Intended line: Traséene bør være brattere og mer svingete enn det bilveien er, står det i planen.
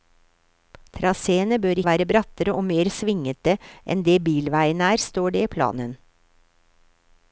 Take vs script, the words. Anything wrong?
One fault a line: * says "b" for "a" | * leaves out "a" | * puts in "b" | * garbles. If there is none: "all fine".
all fine